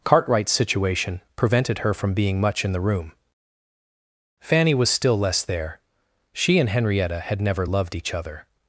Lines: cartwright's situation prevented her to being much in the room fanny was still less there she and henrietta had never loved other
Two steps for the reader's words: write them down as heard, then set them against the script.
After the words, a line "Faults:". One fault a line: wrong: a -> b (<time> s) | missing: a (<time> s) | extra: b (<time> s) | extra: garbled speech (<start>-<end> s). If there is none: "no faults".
cartwright's situation prevented her from being much in the room fanny was still less there she and henrietta had never loved each other
Faults:
wrong: to -> from (1.9 s)
extra: each (8.0 s)